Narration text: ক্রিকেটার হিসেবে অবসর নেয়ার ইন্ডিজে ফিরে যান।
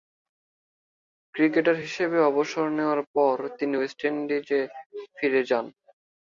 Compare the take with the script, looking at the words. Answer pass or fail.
fail